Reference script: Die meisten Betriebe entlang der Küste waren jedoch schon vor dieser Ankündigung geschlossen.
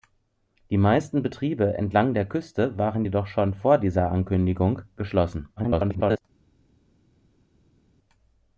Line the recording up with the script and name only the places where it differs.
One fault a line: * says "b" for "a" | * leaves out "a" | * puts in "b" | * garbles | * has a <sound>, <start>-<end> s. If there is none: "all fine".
* garbles